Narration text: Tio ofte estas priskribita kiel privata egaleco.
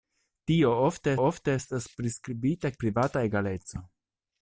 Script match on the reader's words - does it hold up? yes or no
no